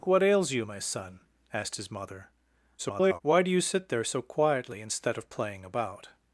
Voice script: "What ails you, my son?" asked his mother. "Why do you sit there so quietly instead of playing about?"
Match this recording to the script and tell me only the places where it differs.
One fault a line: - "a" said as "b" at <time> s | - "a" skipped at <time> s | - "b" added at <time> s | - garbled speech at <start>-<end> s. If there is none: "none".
- garbled speech at 2.8-3.2 s